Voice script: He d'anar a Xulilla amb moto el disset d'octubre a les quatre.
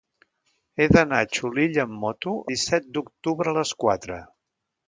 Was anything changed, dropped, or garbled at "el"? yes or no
yes